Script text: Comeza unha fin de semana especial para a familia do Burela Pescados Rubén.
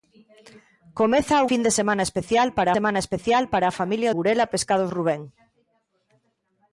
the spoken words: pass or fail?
fail